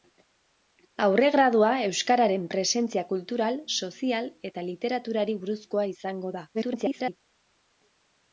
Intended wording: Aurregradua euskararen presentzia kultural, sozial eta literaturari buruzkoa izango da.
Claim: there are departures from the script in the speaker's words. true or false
true